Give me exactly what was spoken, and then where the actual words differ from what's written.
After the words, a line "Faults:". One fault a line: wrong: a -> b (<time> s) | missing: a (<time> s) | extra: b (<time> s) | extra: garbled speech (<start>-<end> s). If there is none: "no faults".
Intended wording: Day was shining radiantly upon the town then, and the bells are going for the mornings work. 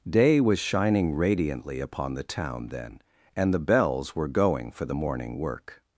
Day was shining radiantly upon the town then, and the bells were going for the morning work.
Faults:
wrong: are -> were (4.2 s)
wrong: mornings -> morning (4.9 s)